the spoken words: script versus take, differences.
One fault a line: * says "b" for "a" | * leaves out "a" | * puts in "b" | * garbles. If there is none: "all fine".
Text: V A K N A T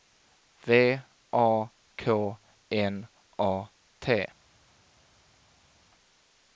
all fine